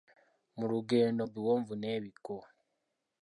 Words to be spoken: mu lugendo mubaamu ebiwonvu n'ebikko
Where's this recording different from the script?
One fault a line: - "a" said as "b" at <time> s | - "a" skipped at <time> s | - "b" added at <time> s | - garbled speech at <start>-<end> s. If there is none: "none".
- "mubaamu" skipped at 1.2 s